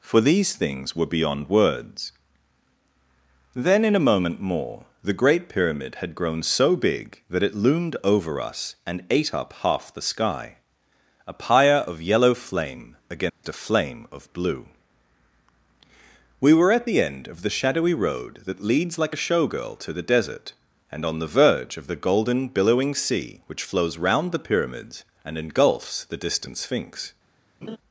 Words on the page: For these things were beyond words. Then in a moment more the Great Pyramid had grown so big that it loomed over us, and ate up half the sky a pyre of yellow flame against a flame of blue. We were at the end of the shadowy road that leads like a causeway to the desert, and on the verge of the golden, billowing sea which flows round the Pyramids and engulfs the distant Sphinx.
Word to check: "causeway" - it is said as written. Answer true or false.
false